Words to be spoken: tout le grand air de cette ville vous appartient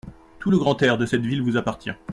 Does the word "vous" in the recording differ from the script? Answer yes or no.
no